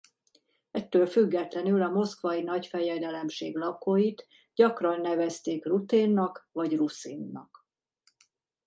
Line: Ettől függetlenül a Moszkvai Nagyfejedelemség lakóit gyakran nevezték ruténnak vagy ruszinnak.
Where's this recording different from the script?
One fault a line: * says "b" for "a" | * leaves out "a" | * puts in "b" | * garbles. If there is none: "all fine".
all fine